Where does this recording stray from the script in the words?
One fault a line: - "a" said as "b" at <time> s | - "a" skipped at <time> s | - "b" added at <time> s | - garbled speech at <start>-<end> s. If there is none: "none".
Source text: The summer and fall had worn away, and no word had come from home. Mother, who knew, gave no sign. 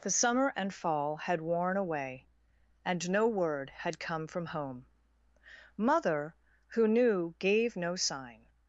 none